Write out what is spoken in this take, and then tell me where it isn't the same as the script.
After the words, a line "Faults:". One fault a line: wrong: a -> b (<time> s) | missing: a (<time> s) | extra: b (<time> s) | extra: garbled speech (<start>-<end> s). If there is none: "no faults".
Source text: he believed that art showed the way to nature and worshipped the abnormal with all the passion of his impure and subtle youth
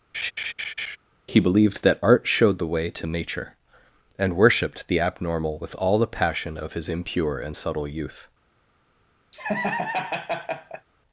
he believed that art showed the way to nature and worshipped the abnormal with all the passion of his impure and subtle youth
Faults:
no faults